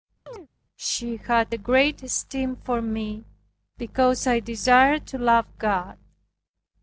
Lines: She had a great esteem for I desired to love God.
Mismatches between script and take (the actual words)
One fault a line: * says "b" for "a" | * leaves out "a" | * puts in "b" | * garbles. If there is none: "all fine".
* puts in "me because"